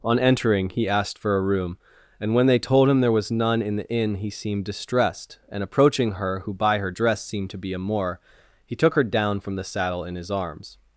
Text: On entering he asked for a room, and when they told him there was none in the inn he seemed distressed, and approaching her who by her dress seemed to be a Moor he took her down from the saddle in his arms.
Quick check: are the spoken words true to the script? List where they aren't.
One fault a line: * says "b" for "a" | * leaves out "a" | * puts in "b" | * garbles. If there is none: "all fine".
all fine